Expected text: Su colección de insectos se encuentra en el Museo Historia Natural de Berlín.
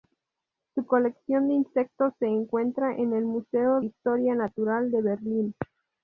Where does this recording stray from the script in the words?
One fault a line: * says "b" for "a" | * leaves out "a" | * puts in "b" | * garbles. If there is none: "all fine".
all fine